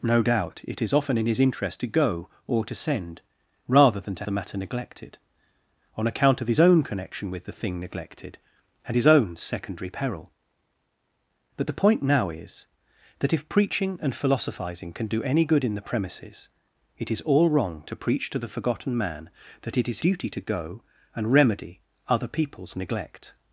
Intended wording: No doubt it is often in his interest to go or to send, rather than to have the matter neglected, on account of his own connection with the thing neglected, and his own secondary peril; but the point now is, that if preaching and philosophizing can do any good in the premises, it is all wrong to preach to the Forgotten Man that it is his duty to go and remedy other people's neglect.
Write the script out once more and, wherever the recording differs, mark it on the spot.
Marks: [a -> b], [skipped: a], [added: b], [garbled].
No doubt it is often in his interest to go or to send, rather than to [skipped: have] the matter neglected, on account of his own connection with the thing neglected, and his own secondary peril; but the point now is, that if preaching and philosophizing can do any good in the premises, it is all wrong to preach to the Forgotten Man that it is [skipped: his] duty to go and remedy other people's neglect.